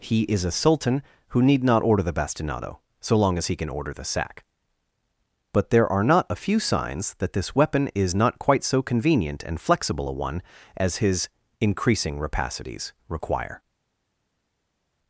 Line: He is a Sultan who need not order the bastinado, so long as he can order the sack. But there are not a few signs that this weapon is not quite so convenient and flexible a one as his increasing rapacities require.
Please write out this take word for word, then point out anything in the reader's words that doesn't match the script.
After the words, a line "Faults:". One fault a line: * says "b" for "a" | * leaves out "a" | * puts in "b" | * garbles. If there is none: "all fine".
He is a Sultan who need not order the bastinado, so long as he can order the sack. But there are not a few signs that this weapon is not quite so convenient and flexible a one as his increasing rapacities require.
Faults:
all fine